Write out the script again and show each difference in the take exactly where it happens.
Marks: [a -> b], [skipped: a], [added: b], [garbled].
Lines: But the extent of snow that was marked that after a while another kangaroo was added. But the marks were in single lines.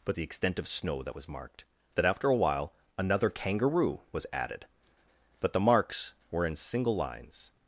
But the extent of snow that was marked that after a while another kangaroo was added. But the marks were in single lines.